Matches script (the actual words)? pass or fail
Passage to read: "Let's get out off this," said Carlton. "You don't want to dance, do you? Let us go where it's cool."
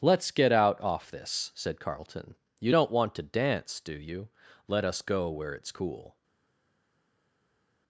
pass